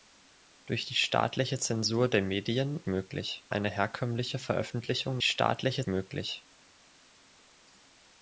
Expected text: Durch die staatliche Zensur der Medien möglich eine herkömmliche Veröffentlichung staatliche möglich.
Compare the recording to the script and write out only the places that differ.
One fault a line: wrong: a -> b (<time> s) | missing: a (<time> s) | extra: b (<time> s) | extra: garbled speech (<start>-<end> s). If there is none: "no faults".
no faults